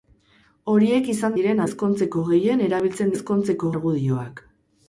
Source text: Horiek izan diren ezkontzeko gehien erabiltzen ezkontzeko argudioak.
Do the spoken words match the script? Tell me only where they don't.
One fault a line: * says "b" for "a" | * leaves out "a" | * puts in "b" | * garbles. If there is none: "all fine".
all fine